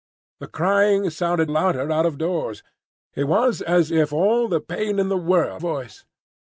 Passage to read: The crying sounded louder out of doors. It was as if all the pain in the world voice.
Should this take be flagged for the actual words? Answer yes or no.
no